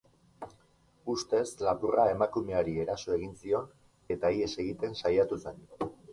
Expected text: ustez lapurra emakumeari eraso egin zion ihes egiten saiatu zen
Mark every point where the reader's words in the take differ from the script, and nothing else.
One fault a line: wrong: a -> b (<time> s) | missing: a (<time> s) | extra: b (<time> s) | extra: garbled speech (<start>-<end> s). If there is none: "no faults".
extra: eta (4.2 s)